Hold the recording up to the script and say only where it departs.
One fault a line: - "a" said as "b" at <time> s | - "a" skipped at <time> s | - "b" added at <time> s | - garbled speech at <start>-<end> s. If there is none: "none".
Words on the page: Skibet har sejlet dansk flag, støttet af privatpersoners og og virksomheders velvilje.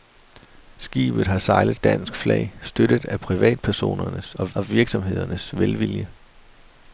none